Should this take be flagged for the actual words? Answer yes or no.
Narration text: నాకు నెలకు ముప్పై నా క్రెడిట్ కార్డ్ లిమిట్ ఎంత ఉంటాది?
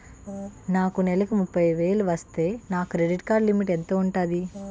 yes